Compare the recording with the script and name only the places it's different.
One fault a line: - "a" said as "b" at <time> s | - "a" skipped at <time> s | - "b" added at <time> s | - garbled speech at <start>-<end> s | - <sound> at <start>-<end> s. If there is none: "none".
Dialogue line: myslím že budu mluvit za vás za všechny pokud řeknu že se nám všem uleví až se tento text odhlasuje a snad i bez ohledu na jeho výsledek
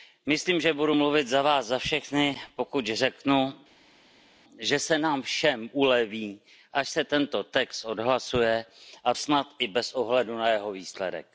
none